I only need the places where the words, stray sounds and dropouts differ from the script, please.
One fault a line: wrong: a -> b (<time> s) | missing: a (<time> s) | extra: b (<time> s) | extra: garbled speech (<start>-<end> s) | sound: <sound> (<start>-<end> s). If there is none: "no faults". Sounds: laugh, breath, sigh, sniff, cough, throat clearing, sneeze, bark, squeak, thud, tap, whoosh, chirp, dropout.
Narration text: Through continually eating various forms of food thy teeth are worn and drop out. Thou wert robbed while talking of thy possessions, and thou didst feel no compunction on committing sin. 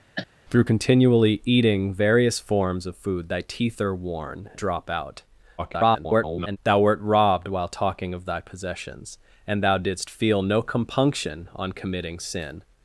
sound: cough (0.2-0.3 s)
missing: and (4.5 s)
extra: garbled speech (5.6-6.6 s)